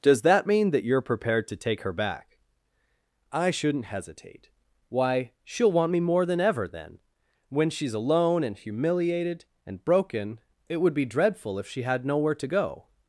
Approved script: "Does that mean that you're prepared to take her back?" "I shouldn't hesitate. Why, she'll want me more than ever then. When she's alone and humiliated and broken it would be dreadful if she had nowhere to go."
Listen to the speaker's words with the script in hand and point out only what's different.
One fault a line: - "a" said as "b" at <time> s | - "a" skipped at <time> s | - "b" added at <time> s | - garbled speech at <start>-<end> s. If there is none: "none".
none